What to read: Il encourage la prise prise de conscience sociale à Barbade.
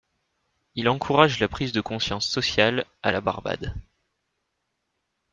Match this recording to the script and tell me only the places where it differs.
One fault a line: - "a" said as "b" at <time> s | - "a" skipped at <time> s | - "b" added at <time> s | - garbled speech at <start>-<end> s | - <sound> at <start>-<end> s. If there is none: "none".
- "prise" skipped at 1.7 s
- "la" added at 3.1 s